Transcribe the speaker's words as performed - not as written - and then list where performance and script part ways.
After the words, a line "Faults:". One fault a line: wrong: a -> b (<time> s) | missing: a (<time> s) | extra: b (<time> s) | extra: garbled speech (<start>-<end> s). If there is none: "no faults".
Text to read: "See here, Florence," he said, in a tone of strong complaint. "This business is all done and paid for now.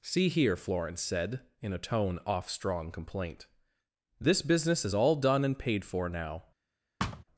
"See here, Florence," said, in a tone off strong complaint. "This business is all done and paid for now.
Faults:
missing: he (1.0 s)
wrong: of -> off (2.2 s)